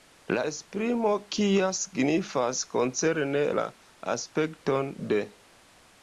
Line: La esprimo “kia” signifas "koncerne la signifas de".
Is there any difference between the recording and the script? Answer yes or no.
yes